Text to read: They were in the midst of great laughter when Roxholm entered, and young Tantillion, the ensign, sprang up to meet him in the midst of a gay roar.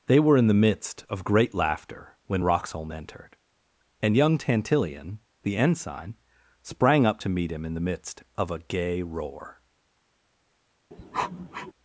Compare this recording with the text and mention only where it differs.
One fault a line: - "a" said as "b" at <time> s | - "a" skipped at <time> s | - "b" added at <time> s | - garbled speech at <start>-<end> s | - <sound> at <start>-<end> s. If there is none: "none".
- sniff at 10.9-11.7 s